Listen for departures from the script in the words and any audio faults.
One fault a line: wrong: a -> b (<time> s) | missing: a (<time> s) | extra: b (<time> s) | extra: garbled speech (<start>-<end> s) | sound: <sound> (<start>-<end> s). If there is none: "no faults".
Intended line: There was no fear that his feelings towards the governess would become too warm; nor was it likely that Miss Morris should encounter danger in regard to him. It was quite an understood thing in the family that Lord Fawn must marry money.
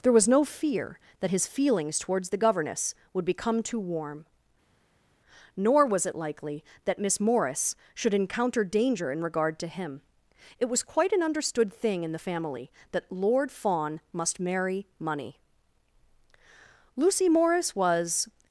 extra: Lucy Morris was (16.9 s)